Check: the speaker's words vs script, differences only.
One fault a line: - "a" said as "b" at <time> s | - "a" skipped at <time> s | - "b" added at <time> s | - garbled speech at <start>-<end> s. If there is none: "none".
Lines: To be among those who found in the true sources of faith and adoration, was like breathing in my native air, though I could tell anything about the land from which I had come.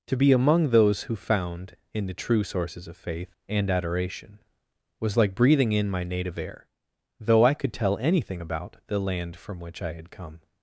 none